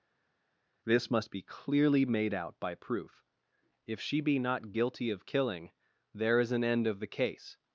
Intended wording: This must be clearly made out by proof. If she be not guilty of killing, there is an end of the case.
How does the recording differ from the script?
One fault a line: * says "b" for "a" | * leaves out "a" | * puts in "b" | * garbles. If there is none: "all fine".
all fine